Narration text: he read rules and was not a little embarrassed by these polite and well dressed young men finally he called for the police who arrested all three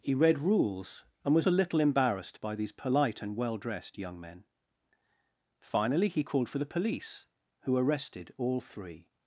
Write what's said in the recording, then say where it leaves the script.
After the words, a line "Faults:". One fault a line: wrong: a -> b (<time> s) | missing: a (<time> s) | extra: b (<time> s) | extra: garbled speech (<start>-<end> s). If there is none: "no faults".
he read rules and was a little embarrassed by these polite and well dressed young men finally he called for the police who arrested all three
Faults:
missing: not (1.5 s)